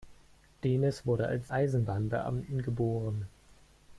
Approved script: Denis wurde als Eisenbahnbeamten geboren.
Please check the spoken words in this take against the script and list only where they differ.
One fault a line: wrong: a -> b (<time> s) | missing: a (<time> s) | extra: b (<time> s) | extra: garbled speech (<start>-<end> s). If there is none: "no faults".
no faults